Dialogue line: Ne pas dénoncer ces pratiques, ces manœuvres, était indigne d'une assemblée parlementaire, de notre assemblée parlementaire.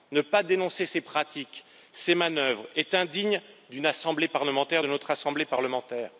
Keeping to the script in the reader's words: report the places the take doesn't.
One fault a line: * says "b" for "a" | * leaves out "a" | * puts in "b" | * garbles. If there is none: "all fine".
* says "est" for "était"